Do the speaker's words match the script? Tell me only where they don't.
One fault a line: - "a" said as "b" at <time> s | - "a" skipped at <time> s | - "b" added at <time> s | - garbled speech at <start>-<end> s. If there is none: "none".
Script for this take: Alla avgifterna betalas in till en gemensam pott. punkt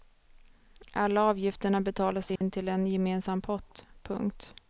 none